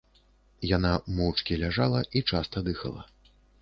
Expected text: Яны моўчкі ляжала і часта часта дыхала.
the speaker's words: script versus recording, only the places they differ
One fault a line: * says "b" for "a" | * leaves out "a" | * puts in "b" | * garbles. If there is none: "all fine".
* says "Яна" for "Яны"
* leaves out "часта"